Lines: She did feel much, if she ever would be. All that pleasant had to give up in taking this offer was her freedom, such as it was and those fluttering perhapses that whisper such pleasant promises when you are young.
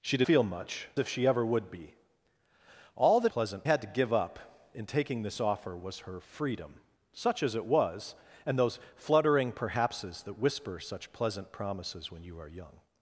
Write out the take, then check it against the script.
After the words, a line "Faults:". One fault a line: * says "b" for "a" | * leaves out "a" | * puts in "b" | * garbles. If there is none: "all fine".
She did feel much, if she ever would be. All that pleasant had to give up in taking this offer was her freedom, such as it was and those fluttering perhapses that whisper such pleasant promises when you are young.
Faults:
all fine